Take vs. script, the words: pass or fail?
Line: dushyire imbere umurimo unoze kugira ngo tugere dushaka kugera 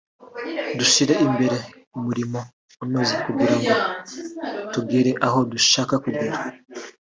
fail